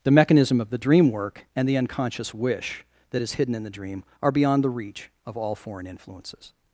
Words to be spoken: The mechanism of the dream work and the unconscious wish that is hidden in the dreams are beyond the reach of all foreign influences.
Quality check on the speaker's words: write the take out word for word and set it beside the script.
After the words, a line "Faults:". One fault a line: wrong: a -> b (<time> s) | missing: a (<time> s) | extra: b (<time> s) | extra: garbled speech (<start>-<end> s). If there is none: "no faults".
The mechanism of the dream work and the unconscious wish that is hidden in the dream are beyond the reach of all foreign influences.
Faults:
wrong: dreams -> dream (3.7 s)